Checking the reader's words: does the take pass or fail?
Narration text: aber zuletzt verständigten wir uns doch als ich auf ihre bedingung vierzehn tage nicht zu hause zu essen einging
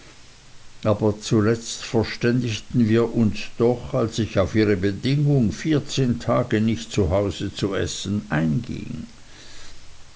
pass